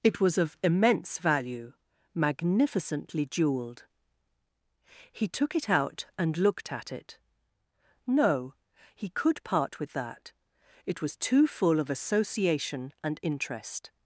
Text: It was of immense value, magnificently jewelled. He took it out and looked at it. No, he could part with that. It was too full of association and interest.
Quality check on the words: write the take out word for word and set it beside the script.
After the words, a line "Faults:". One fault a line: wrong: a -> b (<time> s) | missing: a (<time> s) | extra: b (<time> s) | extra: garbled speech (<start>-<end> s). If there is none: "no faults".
It was of immense value, magnificently jewelled. He took it out and looked at it. No, he could part with that. It was too full of association and interest.
Faults:
no faults